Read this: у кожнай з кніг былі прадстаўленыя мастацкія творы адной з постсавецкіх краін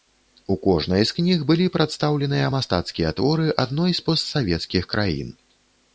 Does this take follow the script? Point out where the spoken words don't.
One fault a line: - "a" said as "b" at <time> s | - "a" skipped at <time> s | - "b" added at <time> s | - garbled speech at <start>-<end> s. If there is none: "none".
none